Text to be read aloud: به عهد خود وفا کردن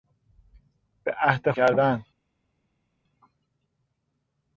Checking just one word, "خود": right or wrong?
wrong